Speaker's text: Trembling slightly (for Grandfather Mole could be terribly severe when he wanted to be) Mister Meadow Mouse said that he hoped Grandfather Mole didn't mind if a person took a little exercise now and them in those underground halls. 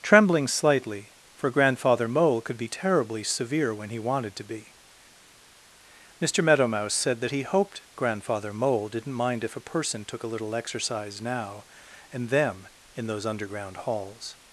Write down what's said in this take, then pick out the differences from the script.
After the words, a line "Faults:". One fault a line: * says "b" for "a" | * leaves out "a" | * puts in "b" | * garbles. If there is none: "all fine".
Trembling slightly (for Grandfather Mole could be terribly severe when he wanted to be) Mister Meadow Mouse said that he hoped Grandfather Mole didn't mind if a person took a little exercise now and them in those underground halls.
Faults:
all fine